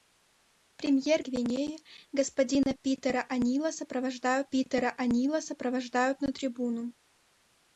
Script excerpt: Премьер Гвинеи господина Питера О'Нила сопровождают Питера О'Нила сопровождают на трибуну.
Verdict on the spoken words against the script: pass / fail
pass